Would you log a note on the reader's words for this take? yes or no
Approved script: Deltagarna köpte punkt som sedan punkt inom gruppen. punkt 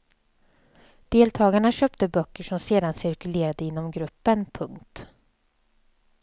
yes